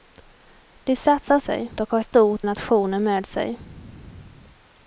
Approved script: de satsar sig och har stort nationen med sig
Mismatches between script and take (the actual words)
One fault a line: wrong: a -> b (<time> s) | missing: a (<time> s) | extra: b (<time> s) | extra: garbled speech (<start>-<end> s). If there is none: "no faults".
no faults